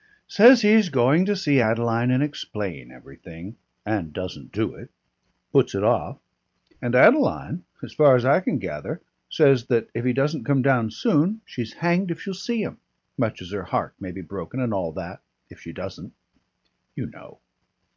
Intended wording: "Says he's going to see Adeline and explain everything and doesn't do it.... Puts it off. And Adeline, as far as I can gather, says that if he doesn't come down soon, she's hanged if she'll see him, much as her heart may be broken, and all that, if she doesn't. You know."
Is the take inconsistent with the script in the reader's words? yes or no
no